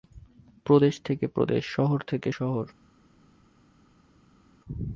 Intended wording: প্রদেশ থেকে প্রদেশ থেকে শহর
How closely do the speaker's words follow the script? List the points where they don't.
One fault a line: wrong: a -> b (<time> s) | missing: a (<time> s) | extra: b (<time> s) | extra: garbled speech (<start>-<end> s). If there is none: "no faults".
extra: শহর (1.7 s)